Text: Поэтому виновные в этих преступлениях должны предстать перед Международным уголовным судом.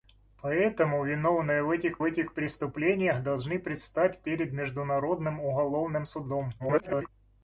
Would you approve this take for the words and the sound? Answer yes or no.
no